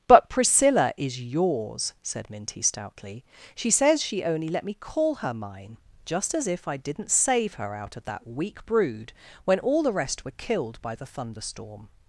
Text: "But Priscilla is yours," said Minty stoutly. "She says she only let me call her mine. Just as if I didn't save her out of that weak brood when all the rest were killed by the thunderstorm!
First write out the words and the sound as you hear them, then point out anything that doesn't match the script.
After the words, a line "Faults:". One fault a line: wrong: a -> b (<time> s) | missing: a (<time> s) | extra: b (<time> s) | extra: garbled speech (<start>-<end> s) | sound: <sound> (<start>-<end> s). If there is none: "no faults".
"But Priscilla is yours," said Minty stoutly. "She says she only let me call her mine. Just as if I didn't save her out of that weak brood when all the rest were killed by the thunderstorm!
Faults:
no faults